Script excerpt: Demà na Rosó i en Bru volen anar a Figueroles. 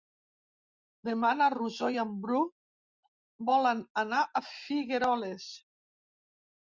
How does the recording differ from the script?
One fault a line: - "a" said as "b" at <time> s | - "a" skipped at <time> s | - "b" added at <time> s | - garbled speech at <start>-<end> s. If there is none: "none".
none